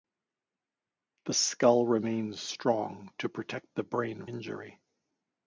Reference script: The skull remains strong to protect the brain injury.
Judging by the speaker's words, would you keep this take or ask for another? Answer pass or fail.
pass